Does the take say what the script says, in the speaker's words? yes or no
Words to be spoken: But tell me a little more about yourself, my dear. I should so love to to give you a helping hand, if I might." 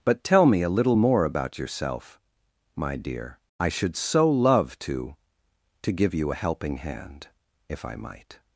yes